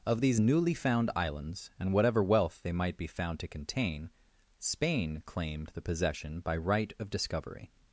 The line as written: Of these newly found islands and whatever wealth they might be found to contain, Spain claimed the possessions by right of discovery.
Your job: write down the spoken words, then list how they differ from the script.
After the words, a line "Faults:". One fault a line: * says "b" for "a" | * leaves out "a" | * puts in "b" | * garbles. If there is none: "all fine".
Of these newly found islands and whatever wealth they might be found to contain, Spain claimed the possession by right of discovery.
Faults:
* says "possession" for "possessions"